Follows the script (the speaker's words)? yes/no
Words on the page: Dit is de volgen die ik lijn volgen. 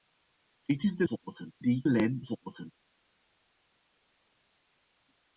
yes